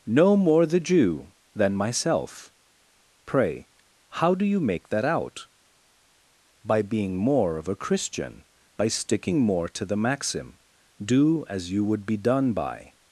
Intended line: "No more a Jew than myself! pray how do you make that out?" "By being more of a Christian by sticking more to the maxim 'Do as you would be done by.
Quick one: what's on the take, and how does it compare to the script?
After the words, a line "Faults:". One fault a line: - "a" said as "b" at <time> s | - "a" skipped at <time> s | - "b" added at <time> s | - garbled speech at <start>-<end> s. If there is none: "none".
"No more the Jew than myself! pray how do you make that out?" "By being more of a Christian by sticking more to the maxim 'Do as you would be done by.
Faults:
- "a" said as "the" at 0.7 s